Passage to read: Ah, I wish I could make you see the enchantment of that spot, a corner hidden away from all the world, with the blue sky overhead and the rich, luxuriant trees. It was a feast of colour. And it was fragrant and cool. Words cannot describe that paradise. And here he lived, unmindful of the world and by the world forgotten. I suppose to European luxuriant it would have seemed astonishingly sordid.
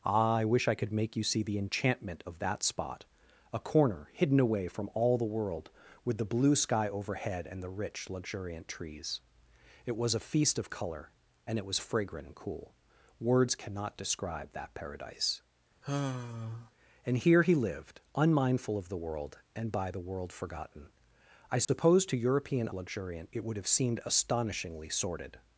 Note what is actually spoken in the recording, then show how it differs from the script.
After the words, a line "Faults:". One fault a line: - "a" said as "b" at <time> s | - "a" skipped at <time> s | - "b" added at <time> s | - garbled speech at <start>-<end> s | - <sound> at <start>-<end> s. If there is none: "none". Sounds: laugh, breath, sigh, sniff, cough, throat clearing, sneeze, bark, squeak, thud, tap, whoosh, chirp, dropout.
Ah, I wish I could make you see the enchantment of that spot, a corner hidden away from all the world, with the blue sky overhead and the rich, luxuriant trees. It was a feast of colour. And it was fragrant and cool. Words cannot describe that paradise. And here he lived, unmindful of the world and by the world forgotten. I suppose to European luxuriant it would have seemed astonishingly sordid.
Faults:
- sigh at 15.8-16.7 s
- dropout at 21.6-21.7 s